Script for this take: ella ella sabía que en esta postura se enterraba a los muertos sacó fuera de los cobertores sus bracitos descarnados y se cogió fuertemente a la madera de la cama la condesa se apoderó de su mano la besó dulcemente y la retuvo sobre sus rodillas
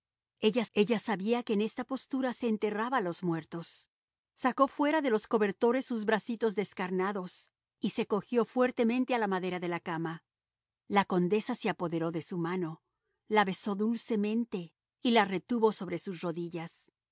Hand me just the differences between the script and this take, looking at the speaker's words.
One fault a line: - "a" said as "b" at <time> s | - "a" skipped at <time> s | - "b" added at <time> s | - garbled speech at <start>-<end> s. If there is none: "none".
none